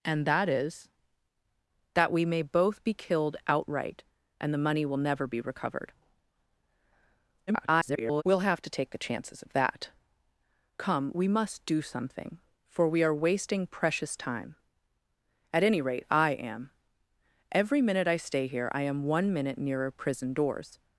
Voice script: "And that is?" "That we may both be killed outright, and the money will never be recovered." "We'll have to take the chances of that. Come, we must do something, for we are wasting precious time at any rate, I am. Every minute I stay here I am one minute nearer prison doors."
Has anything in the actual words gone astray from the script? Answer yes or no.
yes